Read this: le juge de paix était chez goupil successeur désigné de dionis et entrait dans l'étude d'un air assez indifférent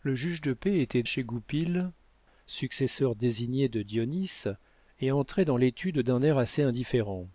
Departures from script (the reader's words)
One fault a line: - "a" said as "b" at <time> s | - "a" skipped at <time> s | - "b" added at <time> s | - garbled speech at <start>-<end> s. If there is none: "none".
none